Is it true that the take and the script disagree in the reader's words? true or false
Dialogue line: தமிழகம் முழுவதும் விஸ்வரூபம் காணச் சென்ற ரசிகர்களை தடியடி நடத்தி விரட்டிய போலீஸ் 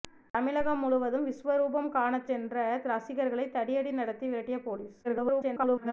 true